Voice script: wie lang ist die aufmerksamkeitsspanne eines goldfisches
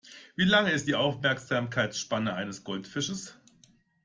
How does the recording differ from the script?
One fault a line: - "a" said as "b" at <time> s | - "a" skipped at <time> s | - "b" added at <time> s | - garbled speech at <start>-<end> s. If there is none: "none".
none